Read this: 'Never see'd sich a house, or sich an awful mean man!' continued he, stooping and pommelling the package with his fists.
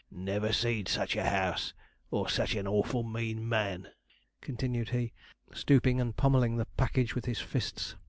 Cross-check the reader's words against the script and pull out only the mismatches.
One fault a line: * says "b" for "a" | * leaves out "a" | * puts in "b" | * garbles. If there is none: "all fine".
all fine